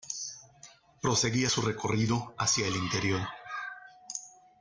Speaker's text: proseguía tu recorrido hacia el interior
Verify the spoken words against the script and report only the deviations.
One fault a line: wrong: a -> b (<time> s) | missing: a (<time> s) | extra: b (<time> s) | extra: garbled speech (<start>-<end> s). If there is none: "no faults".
wrong: tu -> su (1.5 s)